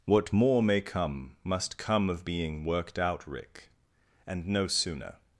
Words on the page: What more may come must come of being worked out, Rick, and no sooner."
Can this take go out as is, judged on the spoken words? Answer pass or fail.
pass